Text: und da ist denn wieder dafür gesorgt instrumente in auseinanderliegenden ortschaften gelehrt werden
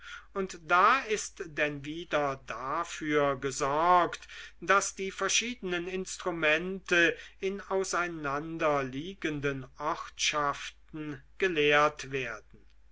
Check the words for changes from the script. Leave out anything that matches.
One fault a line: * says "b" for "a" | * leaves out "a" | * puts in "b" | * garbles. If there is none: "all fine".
* puts in "daß die verschiedenen"